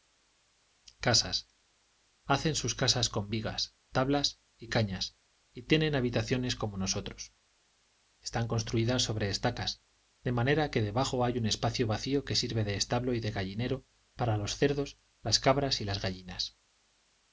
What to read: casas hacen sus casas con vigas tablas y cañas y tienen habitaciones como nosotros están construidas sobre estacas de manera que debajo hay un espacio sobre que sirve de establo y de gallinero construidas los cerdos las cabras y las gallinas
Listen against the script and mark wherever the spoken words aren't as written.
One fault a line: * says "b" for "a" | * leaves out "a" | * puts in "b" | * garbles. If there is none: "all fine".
* says "vacío" for "sobre"
* says "para" for "construidas"